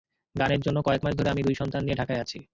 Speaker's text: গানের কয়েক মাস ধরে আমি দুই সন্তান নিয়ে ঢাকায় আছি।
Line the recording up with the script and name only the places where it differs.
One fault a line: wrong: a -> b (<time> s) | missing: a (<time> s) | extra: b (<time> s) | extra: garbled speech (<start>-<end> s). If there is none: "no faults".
extra: জন্য (0.6 s)